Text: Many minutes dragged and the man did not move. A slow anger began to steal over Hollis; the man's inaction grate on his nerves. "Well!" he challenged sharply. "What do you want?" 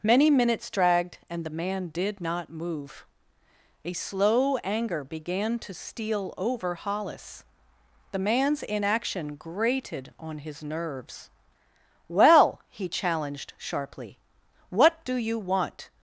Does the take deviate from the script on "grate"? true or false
true